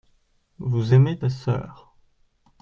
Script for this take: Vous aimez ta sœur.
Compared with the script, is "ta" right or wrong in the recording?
right